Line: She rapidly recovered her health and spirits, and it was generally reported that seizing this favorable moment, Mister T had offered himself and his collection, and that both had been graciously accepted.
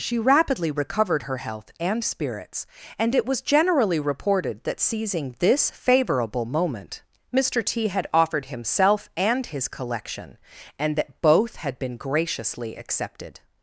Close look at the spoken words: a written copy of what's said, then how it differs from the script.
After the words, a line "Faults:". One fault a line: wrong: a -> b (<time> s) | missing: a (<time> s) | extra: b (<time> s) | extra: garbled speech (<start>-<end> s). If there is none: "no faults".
She rapidly recovered her health and spirits, and it was generally reported that seizing this favorable moment, Mister T had offered himself and his collection, and that both had been graciously accepted.
Faults:
no faults